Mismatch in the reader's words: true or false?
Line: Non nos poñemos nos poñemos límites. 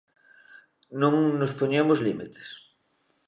true